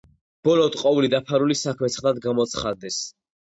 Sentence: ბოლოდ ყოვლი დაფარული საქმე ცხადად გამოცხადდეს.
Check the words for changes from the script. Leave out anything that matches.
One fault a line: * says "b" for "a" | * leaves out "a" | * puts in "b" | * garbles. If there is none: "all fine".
all fine